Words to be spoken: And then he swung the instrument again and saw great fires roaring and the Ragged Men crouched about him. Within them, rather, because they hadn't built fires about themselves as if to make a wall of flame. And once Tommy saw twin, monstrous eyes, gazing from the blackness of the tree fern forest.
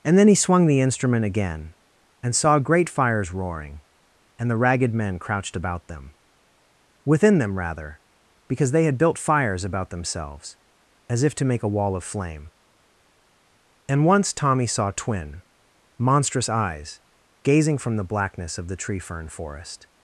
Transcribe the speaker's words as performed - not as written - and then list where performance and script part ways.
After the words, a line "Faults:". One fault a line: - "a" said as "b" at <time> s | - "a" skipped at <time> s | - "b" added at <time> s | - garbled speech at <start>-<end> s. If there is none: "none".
And then he swung the instrument again and saw great fires roaring and the Ragged Men crouched about them. Within them, rather, because they had built fires about themselves as if to make a wall of flame. And once Tommy saw twin, monstrous eyes, gazing from the blackness of the tree fern forest.
Faults:
- "him" said as "them" at 5.9 s
- "hadn't" said as "had" at 8.8 s